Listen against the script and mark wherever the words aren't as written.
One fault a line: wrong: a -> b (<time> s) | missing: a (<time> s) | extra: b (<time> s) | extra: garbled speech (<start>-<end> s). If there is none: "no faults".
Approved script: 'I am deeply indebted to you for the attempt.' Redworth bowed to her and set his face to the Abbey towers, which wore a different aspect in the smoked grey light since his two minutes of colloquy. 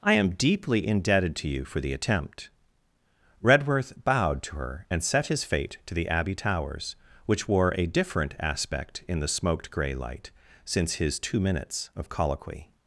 wrong: face -> fate (5.4 s)